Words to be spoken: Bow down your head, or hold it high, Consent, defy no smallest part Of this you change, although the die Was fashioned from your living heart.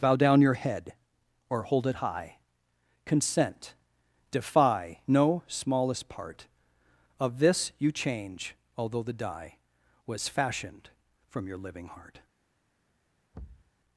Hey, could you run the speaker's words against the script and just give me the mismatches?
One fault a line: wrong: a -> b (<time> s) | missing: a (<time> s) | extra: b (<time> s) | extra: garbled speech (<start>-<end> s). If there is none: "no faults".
no faults